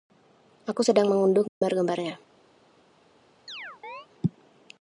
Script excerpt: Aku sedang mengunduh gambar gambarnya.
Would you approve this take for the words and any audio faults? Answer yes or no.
no